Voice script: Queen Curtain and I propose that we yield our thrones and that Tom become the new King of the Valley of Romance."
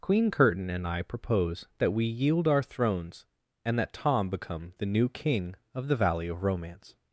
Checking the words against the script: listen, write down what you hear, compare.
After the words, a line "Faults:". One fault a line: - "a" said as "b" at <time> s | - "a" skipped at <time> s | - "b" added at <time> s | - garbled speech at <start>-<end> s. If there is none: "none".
Queen Curtain and I propose that we yield our thrones and that Tom become the new King of the Valley of Romance."
Faults:
none